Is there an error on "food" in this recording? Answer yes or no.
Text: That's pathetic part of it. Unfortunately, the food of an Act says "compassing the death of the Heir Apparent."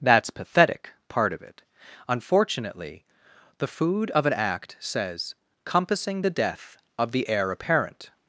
no